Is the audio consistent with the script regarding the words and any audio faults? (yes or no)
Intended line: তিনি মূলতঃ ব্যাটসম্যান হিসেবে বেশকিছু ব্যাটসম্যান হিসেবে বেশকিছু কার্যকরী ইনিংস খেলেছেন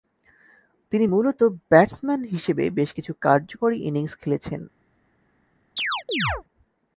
no